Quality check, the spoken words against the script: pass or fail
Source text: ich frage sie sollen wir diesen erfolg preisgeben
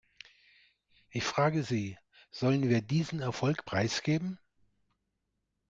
pass